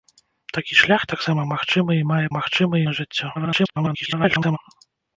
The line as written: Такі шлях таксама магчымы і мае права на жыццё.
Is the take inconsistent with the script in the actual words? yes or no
yes